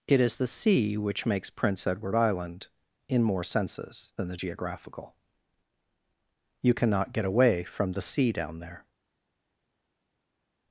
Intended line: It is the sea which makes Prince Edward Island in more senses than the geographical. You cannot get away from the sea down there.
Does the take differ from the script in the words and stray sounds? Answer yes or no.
no